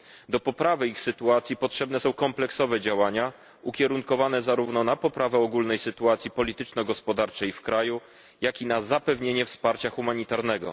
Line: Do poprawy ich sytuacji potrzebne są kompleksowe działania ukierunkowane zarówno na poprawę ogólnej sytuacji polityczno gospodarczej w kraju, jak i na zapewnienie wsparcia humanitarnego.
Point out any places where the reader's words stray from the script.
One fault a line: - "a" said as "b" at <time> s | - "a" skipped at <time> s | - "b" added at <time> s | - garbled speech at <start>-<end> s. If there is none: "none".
none